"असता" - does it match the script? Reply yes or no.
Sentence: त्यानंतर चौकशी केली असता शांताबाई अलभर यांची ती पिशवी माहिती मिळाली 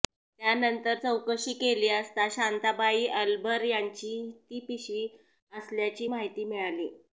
yes